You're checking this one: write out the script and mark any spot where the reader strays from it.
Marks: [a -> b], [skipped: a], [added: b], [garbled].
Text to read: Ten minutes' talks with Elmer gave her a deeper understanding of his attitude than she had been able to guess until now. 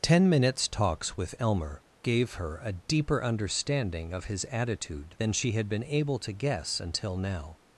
Ten minutes' talks with Elmer gave her a deeper understanding of his attitude than she had been able to guess until now.